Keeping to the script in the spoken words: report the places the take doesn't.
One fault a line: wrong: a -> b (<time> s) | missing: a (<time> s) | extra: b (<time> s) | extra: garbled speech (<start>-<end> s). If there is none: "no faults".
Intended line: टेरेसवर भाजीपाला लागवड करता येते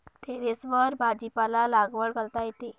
no faults